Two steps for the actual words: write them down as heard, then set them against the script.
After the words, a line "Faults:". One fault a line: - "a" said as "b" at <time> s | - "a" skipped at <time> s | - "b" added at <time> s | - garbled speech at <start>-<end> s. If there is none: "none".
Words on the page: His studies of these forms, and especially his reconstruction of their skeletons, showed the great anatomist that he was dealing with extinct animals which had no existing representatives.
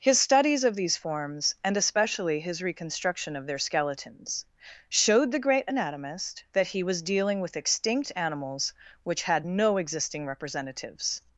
His studies of these forms, and especially his reconstruction of their skeletons, showed the great anatomist that he was dealing with extinct animals which had no existing representatives.
Faults:
none